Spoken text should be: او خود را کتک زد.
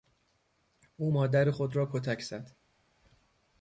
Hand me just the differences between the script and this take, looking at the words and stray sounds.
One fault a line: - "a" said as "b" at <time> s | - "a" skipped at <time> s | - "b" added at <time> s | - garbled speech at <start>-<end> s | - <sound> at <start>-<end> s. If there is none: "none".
- "مادر" added at 1.1 s